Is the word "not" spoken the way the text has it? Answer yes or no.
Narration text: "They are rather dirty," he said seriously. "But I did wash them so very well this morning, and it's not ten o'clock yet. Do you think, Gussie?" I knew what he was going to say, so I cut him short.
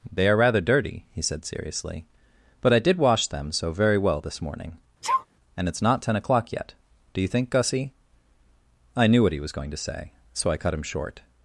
yes